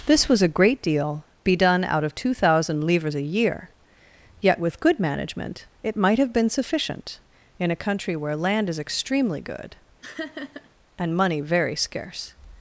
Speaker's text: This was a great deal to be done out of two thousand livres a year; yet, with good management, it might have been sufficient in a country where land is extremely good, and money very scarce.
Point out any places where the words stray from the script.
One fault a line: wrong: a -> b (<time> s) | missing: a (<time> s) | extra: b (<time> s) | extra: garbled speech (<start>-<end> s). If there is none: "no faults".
missing: to (1.2 s)